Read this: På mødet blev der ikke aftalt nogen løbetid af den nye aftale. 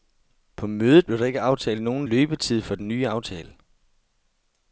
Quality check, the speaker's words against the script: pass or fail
fail